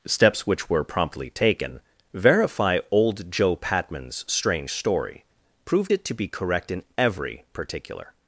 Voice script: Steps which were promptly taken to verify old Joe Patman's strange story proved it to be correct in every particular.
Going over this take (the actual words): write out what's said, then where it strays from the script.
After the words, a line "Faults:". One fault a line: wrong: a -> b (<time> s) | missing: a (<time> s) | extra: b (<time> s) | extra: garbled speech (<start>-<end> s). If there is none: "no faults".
Steps which were promptly taken verify old Joe Patman's strange story proved it to be correct in every particular.
Faults:
missing: to (1.8 s)